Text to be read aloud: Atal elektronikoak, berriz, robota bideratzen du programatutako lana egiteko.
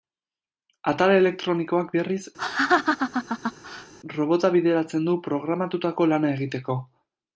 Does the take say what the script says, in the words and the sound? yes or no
no